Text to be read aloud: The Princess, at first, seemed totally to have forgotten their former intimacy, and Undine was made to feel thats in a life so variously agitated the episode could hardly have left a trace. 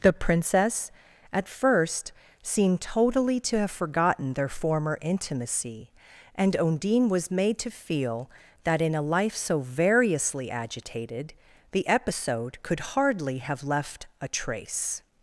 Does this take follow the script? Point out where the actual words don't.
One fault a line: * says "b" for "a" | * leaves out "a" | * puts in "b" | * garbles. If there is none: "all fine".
* says "that" for "thats"